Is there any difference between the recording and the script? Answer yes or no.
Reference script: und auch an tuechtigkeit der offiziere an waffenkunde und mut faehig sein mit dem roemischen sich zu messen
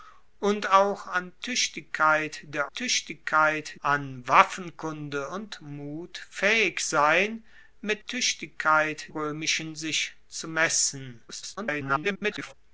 yes